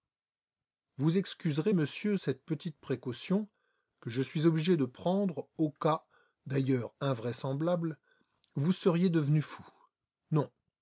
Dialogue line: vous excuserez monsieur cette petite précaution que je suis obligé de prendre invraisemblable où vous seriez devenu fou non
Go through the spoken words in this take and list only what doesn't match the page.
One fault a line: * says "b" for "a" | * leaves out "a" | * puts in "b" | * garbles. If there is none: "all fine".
* puts in "au cas d'ailleurs"